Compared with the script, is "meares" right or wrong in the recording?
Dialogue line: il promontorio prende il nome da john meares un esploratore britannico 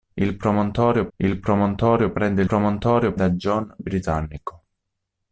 wrong